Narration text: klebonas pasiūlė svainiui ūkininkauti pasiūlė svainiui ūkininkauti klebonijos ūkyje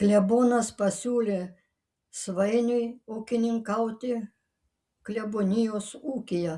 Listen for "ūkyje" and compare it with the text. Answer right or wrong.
right